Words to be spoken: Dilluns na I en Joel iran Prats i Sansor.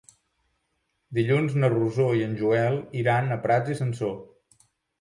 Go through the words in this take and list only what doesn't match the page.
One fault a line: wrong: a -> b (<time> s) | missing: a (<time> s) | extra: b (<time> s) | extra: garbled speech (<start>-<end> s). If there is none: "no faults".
extra: Rosó (1.8 s)
extra: a (3.3 s)